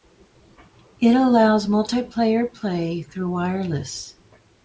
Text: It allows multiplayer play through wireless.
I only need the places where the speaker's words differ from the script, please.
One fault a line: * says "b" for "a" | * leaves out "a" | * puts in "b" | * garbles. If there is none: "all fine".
all fine